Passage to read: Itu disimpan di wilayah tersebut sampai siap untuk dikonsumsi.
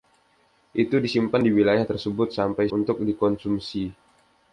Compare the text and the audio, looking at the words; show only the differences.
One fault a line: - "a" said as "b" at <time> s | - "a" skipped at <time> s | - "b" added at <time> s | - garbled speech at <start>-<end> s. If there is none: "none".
- "siap" skipped at 2.7 s